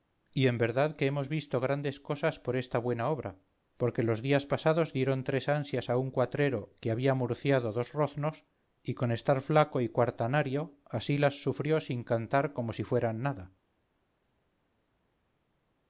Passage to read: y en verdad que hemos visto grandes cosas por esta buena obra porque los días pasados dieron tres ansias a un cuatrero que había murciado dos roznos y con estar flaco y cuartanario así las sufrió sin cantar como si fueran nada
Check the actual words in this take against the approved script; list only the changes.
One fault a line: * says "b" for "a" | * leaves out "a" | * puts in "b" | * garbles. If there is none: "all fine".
all fine